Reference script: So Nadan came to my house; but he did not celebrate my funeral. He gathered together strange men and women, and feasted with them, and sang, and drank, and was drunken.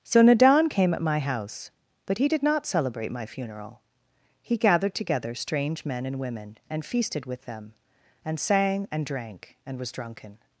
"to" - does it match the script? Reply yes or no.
no